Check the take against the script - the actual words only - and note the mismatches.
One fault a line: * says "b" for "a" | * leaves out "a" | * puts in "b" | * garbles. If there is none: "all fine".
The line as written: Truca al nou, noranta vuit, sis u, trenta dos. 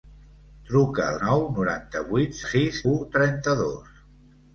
all fine